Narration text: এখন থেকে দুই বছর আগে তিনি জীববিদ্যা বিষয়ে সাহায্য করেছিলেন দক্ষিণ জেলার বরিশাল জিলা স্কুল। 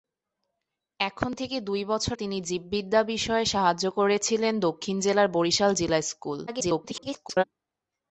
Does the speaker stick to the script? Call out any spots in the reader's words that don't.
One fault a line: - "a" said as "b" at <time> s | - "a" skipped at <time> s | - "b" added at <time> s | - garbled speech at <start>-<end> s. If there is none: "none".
- "আগে" skipped at 2.2 s
- garbled speech at 6.5-7.4 s